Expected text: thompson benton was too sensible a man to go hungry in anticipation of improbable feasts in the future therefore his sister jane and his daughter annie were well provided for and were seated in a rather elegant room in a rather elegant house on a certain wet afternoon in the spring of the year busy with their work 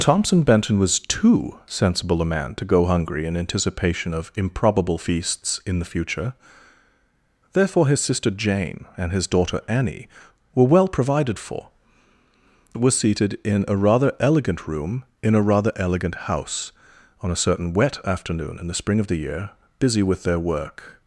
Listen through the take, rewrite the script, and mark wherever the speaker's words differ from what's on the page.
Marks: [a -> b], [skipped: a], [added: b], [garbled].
thompson benton was too sensible a man to go hungry in anticipation of improbable feasts in the future therefore his sister jane and his daughter annie were well provided for [skipped: and] were seated in a rather elegant room in a rather elegant house on a certain wet afternoon in the spring of the year busy with their work